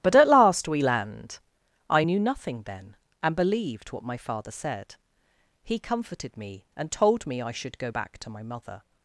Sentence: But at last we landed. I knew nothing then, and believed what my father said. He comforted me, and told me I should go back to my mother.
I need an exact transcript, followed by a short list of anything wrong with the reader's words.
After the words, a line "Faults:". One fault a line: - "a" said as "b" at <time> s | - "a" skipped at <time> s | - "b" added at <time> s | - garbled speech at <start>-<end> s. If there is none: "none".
But at last we land. I knew nothing then, and believed what my father said. He comforted me, and told me I should go back to my mother.
Faults:
- "landed" said as "land" at 0.8 s